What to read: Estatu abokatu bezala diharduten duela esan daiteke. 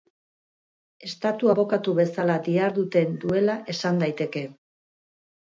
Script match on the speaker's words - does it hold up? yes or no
yes